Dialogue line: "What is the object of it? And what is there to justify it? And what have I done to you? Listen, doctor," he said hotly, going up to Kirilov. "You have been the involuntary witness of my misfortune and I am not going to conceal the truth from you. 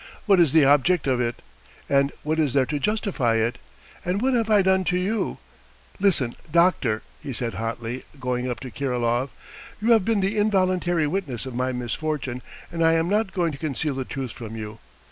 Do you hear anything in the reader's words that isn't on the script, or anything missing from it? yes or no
no